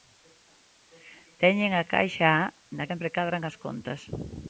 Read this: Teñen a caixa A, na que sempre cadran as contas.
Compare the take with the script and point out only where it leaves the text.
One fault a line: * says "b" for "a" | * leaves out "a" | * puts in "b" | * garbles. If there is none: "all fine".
* leaves out "que"